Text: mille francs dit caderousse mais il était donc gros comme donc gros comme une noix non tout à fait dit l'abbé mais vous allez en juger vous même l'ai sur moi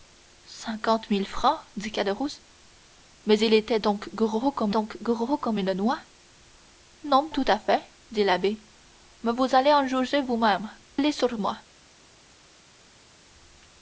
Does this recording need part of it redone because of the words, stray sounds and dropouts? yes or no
no